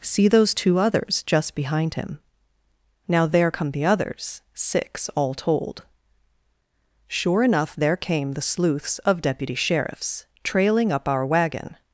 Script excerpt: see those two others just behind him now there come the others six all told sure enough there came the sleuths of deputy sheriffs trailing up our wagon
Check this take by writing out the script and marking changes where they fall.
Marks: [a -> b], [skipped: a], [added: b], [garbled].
see those two others just behind him now there come the others six all told sure enough there came the sleuths of deputy sheriffs trailing up our wagon